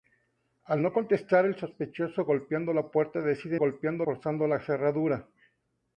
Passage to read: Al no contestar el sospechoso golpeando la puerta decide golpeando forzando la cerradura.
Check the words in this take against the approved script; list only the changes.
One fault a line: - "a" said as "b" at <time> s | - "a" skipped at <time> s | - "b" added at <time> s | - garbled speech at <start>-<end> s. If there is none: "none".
none